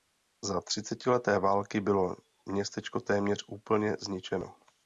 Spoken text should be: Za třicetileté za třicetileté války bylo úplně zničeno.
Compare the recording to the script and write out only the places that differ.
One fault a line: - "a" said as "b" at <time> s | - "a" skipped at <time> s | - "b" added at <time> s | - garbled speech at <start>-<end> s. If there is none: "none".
- "za třicetileté války bylo" said as "války bylo městečko téměř" at 1.4 s